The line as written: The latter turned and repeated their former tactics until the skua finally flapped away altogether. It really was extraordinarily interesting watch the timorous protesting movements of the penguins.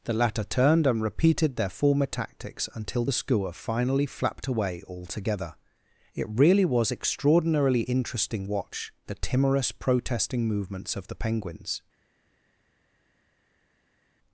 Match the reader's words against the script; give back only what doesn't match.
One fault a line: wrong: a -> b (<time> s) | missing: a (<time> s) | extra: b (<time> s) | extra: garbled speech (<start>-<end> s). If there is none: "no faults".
no faults